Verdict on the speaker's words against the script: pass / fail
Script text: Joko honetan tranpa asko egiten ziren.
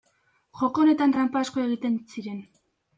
pass